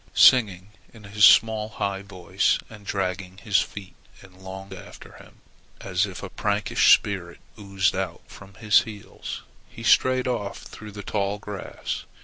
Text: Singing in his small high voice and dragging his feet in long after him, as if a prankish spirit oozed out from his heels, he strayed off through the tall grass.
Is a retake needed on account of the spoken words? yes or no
no